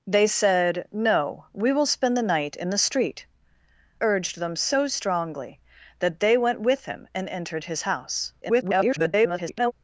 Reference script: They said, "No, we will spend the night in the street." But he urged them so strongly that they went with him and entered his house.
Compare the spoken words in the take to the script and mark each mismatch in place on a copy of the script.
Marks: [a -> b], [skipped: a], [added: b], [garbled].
They said, "No, we will spend the night in the street." [skipped: But he] urged them so strongly that they went with him and entered his house. [garbled]